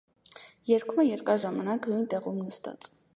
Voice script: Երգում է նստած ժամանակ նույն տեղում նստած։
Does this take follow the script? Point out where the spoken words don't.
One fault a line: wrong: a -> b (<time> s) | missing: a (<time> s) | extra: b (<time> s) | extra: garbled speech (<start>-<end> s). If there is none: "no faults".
wrong: նստած -> երկար (1.1 s)